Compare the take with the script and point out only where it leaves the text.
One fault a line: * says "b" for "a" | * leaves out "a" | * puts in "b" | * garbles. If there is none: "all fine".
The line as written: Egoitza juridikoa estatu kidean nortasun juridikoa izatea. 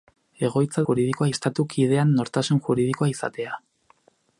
all fine